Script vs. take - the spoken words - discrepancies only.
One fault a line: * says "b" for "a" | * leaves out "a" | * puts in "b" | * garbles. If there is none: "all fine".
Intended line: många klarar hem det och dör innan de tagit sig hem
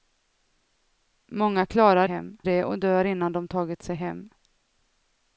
all fine